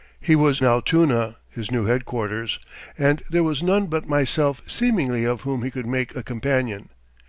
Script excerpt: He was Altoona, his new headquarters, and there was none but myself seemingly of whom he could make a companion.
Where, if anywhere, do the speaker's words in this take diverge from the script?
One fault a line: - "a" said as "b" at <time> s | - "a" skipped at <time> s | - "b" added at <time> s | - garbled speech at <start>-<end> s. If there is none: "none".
none